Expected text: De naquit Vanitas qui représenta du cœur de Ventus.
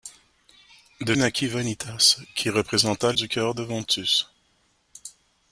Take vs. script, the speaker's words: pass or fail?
pass